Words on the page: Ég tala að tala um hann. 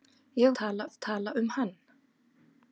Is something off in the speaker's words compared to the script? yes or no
no